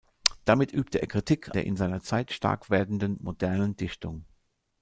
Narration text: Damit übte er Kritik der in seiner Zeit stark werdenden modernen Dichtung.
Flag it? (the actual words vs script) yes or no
no